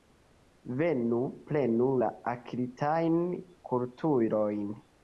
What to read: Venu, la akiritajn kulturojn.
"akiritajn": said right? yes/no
yes